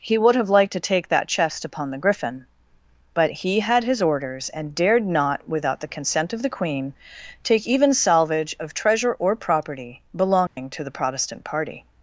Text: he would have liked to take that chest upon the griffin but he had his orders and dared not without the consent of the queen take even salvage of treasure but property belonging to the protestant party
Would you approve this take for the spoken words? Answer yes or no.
no